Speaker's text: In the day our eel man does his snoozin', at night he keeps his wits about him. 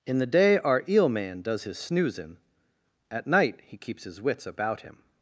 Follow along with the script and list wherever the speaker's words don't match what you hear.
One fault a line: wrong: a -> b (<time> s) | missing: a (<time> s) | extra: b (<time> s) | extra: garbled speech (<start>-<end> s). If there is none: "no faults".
no faults